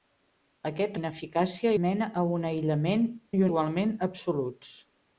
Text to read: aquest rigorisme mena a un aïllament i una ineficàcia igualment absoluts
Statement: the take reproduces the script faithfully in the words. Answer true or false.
false